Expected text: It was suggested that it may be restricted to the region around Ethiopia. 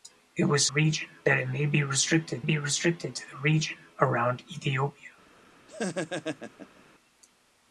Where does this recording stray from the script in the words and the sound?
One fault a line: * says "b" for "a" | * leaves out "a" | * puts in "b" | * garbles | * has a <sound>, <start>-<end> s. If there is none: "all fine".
* says "region" for "suggested"
* puts in "be restricted"
* has a laugh, 5.7-6.8 s